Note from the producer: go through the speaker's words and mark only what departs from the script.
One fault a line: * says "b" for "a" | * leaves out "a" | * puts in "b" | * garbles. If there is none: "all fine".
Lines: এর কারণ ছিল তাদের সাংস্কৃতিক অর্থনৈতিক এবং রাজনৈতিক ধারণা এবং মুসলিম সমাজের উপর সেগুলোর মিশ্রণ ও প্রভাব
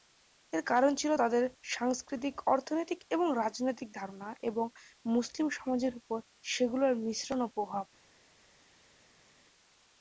all fine